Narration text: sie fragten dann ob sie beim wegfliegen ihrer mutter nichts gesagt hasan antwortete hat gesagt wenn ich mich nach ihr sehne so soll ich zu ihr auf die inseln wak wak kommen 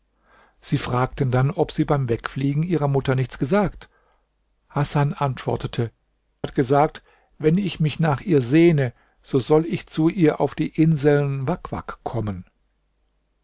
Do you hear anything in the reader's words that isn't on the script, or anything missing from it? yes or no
no